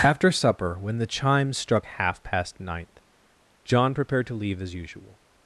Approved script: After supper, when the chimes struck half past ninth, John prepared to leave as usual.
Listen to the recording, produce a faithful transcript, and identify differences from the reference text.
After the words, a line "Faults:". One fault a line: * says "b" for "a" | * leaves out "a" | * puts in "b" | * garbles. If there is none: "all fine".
After supper, when the chimes struck half past ninth, John prepared to leave as usual.
Faults:
all fine